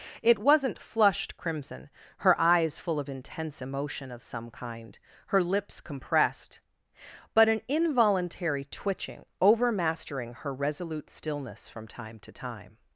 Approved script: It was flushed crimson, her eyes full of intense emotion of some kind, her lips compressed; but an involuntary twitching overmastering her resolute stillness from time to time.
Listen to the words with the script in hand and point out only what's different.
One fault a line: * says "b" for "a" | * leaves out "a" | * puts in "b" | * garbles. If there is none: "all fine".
* says "wasn't" for "was"